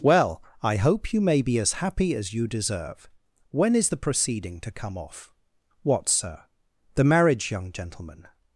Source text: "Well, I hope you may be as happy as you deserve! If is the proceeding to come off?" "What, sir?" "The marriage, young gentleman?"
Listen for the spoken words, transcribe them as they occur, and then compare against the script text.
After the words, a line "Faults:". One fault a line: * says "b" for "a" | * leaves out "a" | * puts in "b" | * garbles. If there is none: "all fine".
"Well, I hope you may be as happy as you deserve! When is the proceeding to come off?" "What, sir?" "The marriage, young gentleman?"
Faults:
* says "When" for "If"